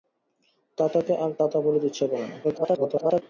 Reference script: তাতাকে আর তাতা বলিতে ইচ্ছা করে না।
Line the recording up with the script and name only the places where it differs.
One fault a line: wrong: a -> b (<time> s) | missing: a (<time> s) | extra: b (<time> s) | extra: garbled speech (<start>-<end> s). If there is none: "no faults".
extra: garbled speech (2.4-3.2 s)